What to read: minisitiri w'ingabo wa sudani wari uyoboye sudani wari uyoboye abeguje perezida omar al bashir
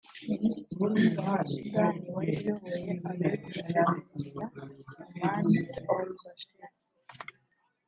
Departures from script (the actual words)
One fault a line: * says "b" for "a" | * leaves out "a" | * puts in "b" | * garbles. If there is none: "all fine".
* leaves out "sudani wari uyoboye"